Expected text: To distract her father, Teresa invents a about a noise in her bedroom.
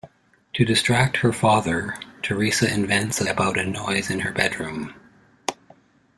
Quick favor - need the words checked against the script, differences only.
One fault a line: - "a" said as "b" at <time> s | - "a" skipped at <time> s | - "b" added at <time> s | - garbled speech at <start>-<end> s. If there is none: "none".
none